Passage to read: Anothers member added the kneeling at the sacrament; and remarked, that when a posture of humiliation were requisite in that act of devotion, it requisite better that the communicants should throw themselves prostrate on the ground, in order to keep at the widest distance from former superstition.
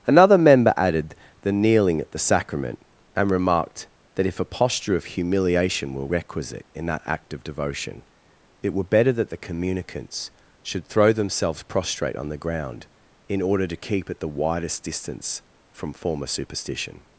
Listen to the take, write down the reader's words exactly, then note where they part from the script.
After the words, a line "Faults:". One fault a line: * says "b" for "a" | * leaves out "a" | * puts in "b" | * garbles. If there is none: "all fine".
Another member added the kneeling at the sacrament; and remarked, that if a posture of humiliation were requisite in that act of devotion, it were better that the communicants should throw themselves prostrate on the ground, in order to keep at the widest distance from former superstition.
Faults:
* says "Another" for "Anothers"
* says "if" for "when"
* says "were" for "requisite"